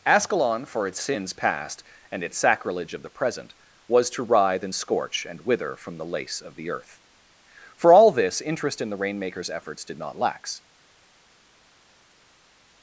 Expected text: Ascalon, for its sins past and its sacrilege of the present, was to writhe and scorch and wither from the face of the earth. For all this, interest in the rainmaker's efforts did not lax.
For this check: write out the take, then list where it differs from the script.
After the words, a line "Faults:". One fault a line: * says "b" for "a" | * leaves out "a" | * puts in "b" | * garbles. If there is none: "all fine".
Ascalon, for its sins past and its sacrilege of the present, was to writhe and scorch and wither from the lace of the earth. For all this, interest in the rainmaker's efforts did not lax.
Faults:
* says "lace" for "face"